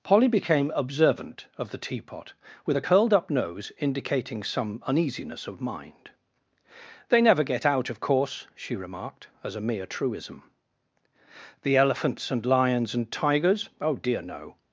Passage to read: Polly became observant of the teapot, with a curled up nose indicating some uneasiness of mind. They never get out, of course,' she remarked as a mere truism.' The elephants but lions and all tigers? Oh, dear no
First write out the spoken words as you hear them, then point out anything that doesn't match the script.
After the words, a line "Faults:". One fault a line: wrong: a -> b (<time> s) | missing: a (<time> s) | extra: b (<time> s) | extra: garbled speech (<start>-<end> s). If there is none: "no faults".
Polly became observant of the teapot, with a curled up nose indicating some uneasiness of mind. They never get out, of course,' she remarked as a mere truism.' The elephants and lions and tigers? Oh, dear no
Faults:
wrong: but -> and (12.3 s)
missing: all (13.1 s)